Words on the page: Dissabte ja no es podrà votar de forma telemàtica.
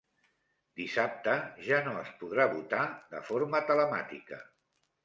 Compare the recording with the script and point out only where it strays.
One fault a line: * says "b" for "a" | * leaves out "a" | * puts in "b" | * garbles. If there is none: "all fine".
all fine